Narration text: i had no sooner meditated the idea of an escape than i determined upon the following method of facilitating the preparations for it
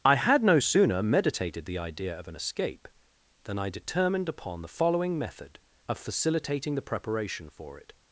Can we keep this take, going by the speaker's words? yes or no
no